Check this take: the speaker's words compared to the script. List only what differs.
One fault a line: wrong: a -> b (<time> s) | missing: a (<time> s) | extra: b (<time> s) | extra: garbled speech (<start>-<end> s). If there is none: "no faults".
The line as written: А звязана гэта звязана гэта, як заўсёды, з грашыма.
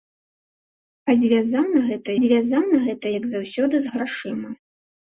no faults